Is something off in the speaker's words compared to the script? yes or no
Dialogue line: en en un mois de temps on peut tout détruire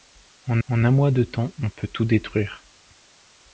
no